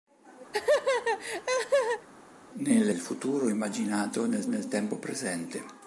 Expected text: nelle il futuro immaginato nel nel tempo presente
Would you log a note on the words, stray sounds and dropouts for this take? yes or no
yes